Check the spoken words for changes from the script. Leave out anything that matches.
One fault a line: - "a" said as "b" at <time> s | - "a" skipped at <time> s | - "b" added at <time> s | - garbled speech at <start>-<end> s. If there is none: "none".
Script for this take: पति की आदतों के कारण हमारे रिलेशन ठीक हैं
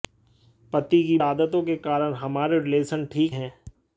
none